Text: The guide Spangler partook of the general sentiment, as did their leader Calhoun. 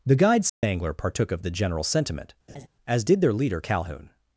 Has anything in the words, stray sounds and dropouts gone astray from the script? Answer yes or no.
yes